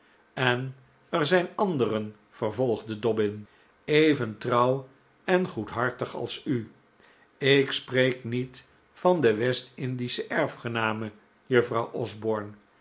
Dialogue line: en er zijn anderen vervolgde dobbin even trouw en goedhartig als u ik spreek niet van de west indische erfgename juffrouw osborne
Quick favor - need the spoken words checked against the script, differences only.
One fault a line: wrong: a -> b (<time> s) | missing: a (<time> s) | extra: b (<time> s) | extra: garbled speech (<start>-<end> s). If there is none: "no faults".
no faults